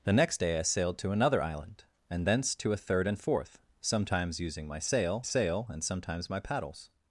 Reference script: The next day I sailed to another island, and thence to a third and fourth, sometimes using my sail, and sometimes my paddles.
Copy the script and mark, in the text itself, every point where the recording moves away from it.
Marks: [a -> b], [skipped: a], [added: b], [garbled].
The next day I sailed to another island, and thence to a third and fourth, sometimes using my sail, [added: sail] and sometimes my paddles.